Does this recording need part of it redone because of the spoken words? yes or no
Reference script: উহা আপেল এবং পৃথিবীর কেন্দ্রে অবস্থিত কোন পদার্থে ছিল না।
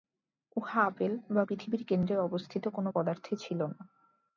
yes